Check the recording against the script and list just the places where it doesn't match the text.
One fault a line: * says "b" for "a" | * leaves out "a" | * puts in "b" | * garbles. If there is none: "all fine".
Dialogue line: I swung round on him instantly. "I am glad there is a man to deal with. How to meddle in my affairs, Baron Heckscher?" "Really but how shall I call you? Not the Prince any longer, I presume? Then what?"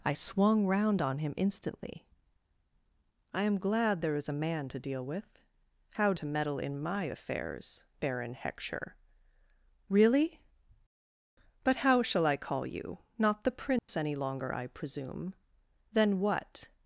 all fine